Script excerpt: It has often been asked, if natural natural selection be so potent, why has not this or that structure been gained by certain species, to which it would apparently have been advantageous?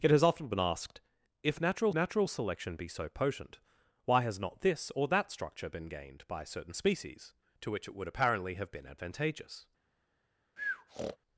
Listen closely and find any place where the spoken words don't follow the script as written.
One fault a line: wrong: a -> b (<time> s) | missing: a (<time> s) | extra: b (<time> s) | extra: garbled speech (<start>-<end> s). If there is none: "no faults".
no faults